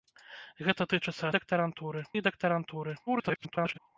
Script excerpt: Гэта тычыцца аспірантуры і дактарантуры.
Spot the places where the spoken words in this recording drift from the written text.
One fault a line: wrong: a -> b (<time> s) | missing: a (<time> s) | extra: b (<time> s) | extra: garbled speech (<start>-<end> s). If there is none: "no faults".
wrong: аспірантуры -> дактарантуры (1.4 s)
extra: garbled speech (3.1-3.8 s)